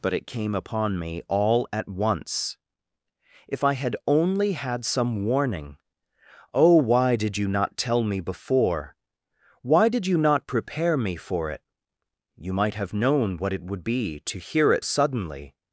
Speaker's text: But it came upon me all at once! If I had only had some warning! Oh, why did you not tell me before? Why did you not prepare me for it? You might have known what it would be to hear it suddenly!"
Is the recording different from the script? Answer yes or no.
no